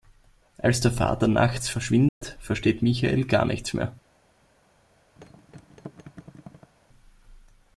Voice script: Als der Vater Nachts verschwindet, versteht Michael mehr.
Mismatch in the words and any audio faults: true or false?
true